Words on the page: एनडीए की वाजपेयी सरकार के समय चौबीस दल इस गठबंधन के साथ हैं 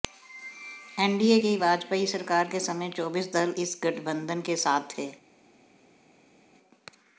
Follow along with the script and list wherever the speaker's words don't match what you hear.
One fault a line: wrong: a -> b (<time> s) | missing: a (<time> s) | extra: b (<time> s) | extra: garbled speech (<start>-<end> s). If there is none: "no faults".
wrong: हैं -> थे (5.0 s)